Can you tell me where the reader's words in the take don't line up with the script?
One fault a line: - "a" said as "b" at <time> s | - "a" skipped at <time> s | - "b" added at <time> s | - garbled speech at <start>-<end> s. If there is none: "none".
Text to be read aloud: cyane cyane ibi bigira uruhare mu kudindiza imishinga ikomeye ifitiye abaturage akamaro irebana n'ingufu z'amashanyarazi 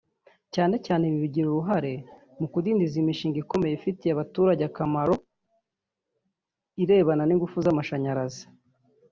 none